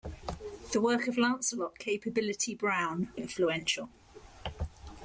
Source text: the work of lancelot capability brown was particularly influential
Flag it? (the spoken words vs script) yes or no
yes